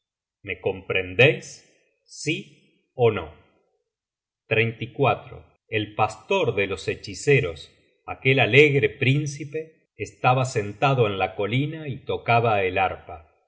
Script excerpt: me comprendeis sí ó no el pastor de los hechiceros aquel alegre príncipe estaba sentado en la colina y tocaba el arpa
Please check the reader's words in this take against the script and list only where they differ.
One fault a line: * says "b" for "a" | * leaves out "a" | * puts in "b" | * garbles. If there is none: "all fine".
all fine